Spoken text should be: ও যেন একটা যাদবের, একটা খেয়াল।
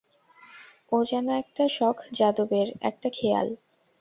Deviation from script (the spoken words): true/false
true